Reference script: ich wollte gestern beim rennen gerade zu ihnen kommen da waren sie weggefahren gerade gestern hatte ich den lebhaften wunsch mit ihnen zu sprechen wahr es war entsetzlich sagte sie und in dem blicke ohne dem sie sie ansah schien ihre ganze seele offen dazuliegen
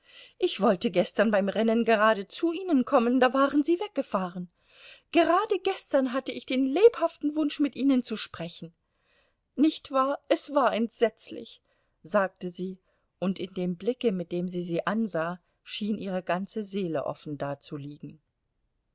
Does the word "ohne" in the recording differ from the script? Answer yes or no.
yes